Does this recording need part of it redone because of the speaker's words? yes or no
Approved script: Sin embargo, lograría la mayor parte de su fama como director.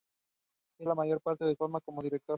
yes